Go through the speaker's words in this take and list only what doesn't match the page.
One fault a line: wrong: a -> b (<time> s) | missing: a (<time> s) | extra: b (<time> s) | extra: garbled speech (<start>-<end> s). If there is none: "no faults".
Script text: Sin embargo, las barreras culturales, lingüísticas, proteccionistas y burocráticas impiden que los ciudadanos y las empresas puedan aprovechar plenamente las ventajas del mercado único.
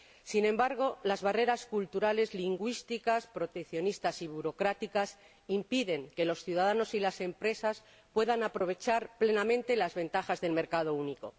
no faults